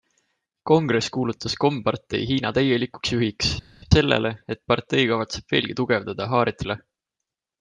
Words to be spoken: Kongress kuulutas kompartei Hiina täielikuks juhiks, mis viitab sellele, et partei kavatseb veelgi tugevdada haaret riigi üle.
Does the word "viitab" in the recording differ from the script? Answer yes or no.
yes